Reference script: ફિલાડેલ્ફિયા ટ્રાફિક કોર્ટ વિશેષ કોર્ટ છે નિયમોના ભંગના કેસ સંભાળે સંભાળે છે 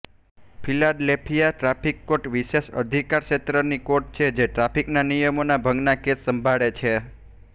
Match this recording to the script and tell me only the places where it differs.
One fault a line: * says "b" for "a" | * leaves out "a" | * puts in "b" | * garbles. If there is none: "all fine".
* puts in "અધિકારક્ષેત્રની"
* puts in "જે ટ્રાફિકના"
* leaves out "સંભાળે"